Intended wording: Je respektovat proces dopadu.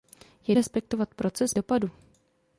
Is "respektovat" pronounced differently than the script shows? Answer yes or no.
no